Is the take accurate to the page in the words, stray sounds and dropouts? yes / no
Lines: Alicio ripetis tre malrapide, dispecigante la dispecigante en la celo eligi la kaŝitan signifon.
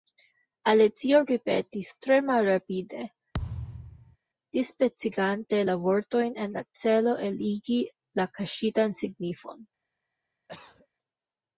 no